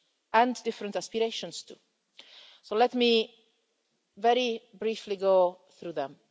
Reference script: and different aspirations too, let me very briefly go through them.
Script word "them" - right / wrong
right